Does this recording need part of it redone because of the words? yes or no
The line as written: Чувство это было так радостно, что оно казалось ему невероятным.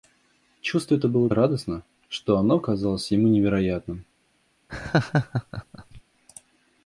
yes